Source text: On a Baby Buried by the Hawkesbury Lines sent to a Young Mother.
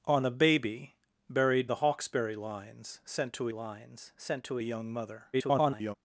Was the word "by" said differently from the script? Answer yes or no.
yes